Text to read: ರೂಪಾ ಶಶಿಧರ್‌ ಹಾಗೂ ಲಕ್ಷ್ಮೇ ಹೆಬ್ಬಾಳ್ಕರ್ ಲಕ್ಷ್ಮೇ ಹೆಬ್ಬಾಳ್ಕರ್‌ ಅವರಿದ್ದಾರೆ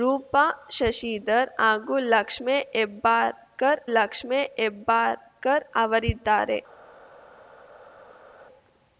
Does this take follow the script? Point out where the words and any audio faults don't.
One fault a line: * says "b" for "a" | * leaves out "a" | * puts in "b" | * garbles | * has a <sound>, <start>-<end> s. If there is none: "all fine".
all fine